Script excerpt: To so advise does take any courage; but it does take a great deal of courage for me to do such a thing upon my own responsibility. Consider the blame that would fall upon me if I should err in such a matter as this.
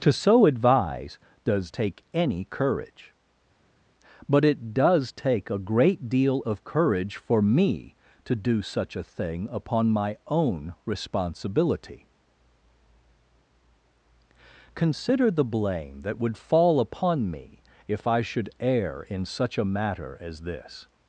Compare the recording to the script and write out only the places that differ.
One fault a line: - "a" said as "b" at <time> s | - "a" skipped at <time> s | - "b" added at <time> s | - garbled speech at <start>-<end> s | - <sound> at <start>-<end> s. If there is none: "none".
none